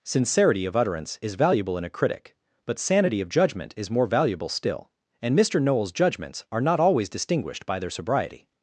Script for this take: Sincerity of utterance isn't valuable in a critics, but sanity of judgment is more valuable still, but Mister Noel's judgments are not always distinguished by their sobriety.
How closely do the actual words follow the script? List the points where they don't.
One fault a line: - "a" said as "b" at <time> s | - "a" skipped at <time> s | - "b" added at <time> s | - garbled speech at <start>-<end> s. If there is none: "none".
- "isn't" said as "is" at 1.2 s
- "critics" said as "critic" at 1.9 s
- "but" said as "and" at 5.2 s